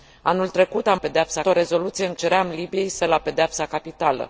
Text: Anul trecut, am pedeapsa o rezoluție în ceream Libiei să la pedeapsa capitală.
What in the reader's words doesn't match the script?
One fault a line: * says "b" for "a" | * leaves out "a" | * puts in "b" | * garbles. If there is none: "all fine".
all fine